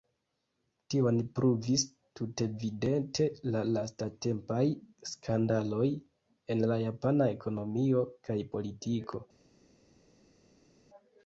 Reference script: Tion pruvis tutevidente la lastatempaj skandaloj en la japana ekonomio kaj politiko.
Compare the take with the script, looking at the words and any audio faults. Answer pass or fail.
pass